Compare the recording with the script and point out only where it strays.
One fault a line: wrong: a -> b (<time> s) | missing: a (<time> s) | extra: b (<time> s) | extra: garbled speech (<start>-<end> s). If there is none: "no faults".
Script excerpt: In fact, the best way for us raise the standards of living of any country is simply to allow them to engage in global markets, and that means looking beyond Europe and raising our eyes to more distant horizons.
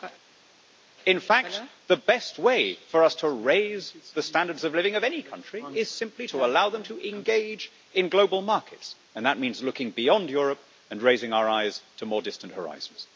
extra: to (3.2 s)